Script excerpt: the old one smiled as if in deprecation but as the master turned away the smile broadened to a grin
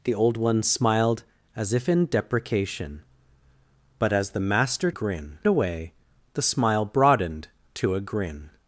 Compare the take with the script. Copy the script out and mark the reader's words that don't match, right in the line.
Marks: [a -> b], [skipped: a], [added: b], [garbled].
the old one smiled as if in deprecation but as the master [turned -> grin] away the smile broadened to a grin